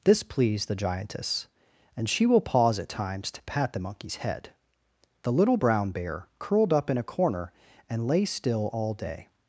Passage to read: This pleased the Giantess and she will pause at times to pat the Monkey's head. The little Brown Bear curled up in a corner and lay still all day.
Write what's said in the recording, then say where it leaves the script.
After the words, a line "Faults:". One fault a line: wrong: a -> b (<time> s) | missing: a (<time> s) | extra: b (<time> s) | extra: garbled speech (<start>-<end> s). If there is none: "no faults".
This pleased the Giantess and she will pause at times to pat the Monkey's head. The little Brown Bear curled up in a corner and lay still all day.
Faults:
no faults